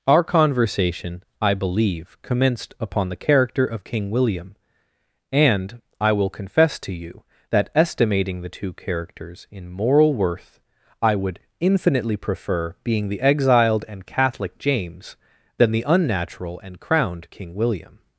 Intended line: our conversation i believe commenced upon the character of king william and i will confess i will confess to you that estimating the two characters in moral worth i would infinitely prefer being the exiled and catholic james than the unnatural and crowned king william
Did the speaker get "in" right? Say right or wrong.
right